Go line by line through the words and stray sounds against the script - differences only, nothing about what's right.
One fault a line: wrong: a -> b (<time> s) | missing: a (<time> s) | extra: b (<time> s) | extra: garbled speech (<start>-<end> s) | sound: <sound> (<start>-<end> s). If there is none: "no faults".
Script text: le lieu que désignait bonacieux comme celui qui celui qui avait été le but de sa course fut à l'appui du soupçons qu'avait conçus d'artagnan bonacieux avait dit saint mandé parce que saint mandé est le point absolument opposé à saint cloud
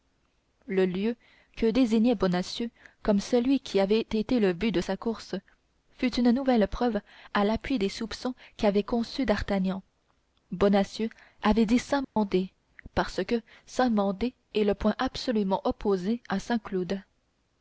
missing: celui qui (3.8 s)
extra: une nouvelle preuve (6.2 s)
wrong: du -> des (7.8 s)
sound: dropout (12.0-12.2 s)